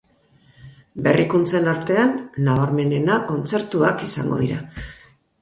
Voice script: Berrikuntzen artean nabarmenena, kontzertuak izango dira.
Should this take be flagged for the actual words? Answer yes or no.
no